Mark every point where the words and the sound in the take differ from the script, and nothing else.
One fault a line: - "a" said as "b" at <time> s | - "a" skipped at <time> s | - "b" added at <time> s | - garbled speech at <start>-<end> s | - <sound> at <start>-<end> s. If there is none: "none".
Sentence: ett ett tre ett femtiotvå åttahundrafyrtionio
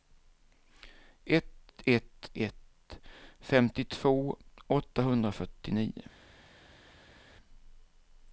- "tre" skipped at 2.3 s